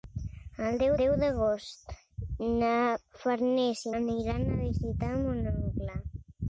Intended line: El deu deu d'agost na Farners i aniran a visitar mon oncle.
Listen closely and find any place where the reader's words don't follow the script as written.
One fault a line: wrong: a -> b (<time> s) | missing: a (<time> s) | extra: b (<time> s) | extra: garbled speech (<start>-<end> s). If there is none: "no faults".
no faults